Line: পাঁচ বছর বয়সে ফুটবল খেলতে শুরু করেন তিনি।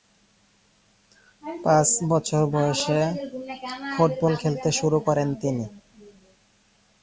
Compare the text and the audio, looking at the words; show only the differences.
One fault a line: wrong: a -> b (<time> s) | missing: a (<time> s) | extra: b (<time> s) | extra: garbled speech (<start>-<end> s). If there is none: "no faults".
no faults